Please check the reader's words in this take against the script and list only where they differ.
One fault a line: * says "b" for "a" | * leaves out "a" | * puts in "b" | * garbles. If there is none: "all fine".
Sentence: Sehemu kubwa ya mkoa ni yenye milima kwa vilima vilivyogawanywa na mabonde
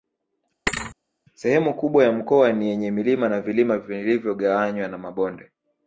* says "na" for "kwa"